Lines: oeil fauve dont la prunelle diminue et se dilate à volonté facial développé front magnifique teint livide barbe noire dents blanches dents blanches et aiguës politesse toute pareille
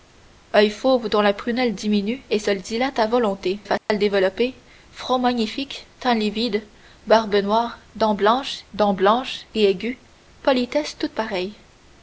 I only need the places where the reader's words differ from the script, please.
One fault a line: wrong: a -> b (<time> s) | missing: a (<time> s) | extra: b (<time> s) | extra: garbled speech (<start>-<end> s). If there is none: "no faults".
no faults